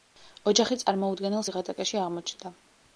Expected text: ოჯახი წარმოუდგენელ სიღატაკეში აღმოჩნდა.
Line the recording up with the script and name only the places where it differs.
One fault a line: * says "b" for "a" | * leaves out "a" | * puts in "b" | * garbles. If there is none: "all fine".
all fine